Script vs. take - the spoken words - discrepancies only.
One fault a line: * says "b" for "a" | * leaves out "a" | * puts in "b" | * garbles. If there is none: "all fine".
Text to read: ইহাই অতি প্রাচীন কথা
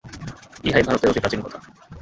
* puts in "ভারতের"